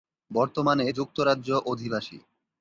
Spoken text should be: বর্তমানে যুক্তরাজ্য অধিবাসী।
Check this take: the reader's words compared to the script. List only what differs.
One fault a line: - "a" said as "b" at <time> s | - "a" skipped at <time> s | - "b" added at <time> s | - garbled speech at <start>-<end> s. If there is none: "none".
none